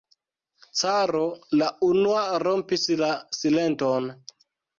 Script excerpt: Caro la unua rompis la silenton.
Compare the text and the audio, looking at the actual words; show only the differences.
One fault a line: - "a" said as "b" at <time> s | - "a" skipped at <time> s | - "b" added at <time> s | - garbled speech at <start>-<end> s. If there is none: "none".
none